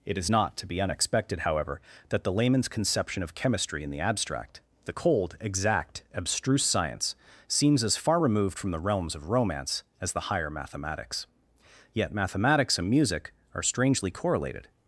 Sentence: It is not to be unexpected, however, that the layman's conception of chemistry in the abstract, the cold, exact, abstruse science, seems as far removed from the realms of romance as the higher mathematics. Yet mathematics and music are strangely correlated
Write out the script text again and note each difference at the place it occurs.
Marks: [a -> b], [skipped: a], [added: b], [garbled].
It is not to be unexpected, however, that the layman's conception of chemistry in the abstract, the cold, exact, abstruse science, seems as far removed from the realms of romance as the higher mathematics. Yet mathematics and music are strangely correlated